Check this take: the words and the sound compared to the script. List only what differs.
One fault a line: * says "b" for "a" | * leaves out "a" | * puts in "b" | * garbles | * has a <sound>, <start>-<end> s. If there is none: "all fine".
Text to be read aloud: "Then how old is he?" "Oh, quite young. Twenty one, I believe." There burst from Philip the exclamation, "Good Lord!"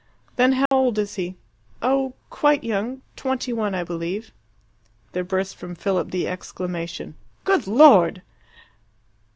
* has a dropout, 0.7-0.7 s